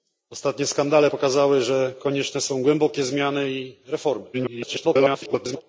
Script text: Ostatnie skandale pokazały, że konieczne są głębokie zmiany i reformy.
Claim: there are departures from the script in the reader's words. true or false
true